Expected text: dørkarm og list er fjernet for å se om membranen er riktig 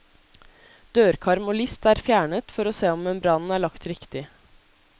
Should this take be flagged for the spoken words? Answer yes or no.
yes